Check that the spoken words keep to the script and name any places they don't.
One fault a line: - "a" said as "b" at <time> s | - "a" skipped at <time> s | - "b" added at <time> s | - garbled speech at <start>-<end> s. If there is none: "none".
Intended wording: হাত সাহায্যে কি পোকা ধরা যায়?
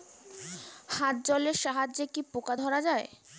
- "জলের" added at 1.3 s